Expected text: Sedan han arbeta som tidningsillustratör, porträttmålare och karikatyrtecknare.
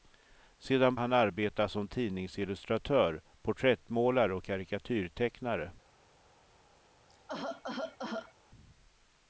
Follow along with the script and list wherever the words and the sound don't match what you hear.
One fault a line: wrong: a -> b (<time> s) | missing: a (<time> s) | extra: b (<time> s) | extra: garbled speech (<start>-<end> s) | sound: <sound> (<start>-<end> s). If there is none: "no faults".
sound: cough (7.1-8.3 s)